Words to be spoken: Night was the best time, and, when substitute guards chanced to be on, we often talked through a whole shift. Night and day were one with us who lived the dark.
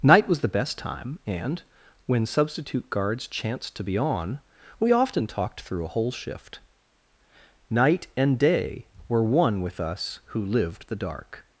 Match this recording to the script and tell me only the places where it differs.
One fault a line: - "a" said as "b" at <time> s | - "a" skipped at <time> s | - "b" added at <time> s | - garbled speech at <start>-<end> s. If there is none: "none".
none